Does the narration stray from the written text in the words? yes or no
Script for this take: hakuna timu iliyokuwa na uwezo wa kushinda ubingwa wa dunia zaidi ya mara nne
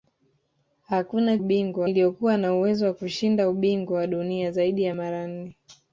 yes